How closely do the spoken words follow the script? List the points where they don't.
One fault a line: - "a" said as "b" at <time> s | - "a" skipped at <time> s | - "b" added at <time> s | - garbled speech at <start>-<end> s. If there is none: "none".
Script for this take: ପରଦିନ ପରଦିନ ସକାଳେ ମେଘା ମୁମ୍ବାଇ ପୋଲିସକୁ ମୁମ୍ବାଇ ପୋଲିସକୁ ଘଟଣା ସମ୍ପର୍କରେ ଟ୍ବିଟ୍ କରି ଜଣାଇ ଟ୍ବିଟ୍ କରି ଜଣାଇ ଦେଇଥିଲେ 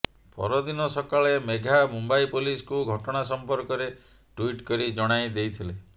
- "ପରଦିନ" skipped at 0.8 s
- "ମୁମ୍ବାଇ ପୋଲିସକୁ" skipped at 2.8 s
- "ଟ୍ବିଟ୍ କରି ଜଣାଇ" skipped at 5.4 s